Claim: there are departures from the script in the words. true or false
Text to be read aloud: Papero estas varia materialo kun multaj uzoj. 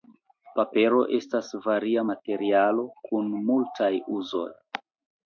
false